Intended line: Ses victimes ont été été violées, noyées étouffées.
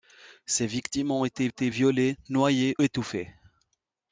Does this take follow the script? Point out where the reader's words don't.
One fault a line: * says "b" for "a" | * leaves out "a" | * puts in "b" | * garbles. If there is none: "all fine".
all fine